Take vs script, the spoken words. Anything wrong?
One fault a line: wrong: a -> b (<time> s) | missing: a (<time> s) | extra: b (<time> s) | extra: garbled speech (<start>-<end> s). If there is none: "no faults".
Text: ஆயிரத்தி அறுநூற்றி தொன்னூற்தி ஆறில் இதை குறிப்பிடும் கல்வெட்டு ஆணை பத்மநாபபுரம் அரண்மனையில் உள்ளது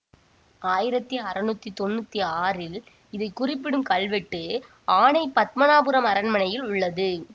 no faults